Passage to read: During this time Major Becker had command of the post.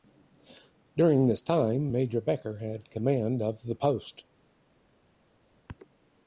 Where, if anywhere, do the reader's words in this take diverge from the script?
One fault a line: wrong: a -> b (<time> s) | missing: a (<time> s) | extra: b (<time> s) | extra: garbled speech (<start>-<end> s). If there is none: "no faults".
no faults